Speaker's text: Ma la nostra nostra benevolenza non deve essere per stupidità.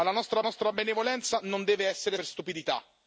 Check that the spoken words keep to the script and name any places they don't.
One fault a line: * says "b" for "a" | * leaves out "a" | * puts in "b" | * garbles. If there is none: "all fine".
all fine